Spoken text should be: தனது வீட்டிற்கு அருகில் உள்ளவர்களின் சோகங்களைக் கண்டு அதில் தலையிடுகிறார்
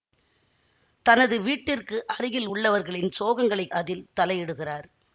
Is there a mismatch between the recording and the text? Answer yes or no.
yes